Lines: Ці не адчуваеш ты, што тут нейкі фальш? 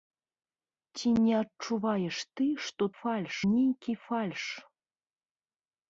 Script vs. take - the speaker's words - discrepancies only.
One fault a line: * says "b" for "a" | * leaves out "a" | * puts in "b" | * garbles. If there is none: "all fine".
* says "фальш" for "тут"